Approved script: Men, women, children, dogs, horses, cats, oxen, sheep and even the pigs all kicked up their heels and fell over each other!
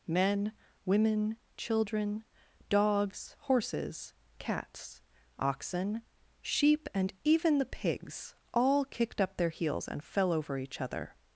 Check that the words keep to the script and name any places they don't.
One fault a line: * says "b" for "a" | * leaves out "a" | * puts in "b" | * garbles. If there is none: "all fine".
all fine